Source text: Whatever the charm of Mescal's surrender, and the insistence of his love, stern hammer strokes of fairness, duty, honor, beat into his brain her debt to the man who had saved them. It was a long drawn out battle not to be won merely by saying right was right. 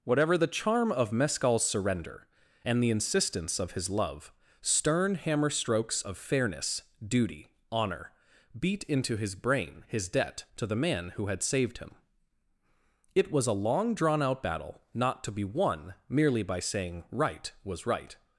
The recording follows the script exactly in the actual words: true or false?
false